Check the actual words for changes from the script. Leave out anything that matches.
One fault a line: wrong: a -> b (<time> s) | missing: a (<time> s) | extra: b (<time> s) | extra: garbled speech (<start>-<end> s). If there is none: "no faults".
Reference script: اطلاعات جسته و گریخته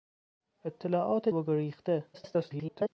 missing: جسته (1.3 s)
extra: garbled speech (2.1-2.9 s)